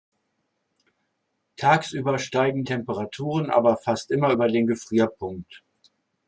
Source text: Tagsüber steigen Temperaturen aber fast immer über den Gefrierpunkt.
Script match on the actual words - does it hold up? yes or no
yes